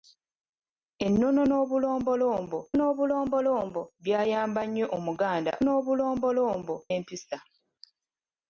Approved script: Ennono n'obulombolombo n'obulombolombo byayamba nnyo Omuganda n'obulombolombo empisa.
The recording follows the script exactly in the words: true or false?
true